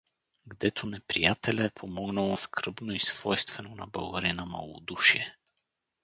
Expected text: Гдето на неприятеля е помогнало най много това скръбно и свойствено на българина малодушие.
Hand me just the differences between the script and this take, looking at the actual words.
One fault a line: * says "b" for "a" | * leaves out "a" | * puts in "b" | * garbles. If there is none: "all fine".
* leaves out "на"
* leaves out "най много това"